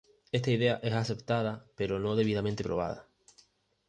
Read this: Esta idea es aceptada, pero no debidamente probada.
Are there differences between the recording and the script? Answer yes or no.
no